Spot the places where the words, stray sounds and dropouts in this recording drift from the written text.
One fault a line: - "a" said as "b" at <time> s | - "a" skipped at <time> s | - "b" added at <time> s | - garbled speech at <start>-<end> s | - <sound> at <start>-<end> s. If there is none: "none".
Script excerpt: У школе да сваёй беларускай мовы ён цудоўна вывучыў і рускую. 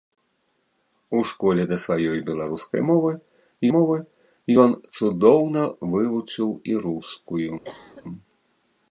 - "мовы" added at 3.7 s
- cough at 7.6-8.0 s